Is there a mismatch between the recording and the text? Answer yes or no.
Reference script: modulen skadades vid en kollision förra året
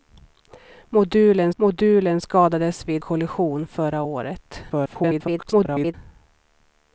yes